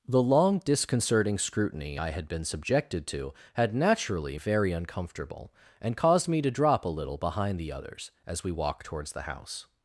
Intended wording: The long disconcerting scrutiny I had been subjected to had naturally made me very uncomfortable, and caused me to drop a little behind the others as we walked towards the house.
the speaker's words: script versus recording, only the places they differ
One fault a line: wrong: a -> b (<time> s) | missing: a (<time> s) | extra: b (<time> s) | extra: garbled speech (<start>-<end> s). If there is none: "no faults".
missing: made me (4.4 s)